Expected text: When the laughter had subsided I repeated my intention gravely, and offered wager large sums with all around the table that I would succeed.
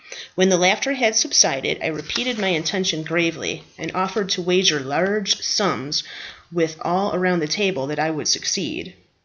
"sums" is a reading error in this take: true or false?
false